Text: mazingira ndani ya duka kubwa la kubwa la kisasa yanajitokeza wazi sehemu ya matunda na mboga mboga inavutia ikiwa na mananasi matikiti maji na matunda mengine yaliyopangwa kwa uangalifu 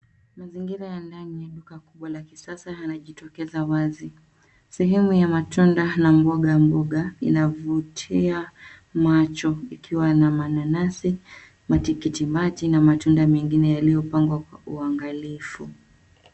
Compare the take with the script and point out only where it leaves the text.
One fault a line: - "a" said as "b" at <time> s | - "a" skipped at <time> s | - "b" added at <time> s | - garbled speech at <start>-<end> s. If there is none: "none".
- "ya" added at 0.9 s
- "kubwa la" skipped at 2.2 s
- "macho" added at 8.9 s